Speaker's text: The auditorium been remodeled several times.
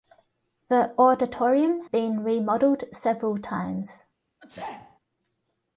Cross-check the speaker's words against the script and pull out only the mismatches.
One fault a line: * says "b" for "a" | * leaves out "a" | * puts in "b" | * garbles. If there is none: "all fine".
all fine